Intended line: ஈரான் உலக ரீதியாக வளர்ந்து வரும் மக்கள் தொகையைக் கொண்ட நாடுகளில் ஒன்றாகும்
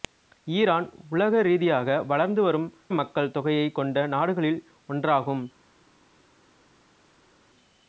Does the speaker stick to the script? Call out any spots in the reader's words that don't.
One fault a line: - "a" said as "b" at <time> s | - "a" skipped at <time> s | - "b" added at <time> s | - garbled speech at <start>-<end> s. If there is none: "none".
none